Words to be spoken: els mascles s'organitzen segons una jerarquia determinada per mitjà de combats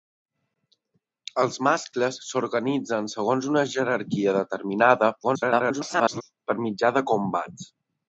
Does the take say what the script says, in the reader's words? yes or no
no